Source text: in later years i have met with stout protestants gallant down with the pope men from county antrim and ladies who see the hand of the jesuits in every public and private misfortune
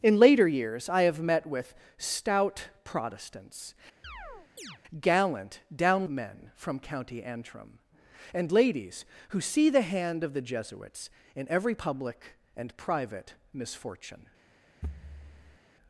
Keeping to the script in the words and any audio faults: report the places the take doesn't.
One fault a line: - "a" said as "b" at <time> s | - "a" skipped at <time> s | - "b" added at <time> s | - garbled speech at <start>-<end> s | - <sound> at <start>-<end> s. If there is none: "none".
- chirp at 4.0-4.8 s
- "with the pope" skipped at 6.1 s
- thud at 14.8-15.6 s